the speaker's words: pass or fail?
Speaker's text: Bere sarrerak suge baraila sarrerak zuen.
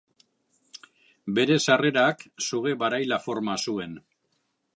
fail